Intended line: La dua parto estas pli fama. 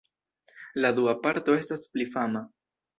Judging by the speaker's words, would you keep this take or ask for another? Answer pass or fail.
pass